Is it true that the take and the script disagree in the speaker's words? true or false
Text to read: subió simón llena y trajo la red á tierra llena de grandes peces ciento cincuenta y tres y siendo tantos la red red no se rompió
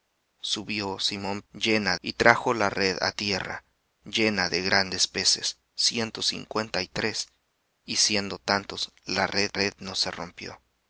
false